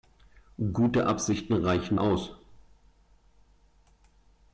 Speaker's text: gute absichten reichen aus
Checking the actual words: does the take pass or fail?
pass